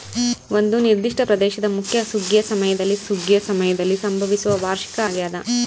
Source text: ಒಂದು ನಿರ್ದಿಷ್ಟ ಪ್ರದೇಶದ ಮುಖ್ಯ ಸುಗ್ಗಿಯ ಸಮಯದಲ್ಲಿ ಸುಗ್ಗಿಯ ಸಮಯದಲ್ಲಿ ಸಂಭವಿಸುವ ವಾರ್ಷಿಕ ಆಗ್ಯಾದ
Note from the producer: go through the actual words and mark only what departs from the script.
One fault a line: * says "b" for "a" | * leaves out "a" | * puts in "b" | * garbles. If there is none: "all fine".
all fine